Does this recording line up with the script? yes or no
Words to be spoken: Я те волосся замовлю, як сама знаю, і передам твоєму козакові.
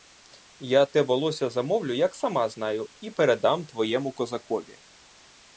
yes